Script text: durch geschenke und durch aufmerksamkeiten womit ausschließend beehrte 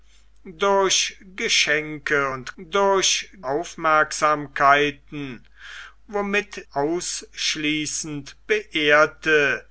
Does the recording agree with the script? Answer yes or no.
yes